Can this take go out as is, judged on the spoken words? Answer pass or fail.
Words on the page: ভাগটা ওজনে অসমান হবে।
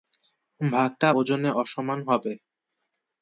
pass